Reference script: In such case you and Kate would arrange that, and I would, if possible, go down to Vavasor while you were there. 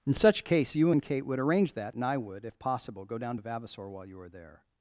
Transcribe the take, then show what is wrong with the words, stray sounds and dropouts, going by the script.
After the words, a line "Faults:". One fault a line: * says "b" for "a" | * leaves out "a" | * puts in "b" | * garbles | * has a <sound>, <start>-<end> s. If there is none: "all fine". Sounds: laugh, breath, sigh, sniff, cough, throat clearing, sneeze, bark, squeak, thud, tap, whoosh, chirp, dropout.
In such case you and Kate would arrange that, and I would, if possible, go down to Vavasor while you were there.
Faults:
all fine